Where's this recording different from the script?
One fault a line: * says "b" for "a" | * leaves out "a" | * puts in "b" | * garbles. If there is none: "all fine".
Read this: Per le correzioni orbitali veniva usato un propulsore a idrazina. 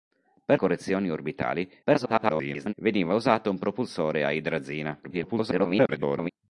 * leaves out "le"
* garbles
* garbles